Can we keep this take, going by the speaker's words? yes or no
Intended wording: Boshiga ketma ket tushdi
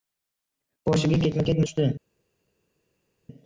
yes